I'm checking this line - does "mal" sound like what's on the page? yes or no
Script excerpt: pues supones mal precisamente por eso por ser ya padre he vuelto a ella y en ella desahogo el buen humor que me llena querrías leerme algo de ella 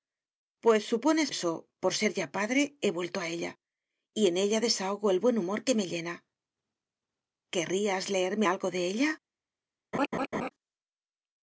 no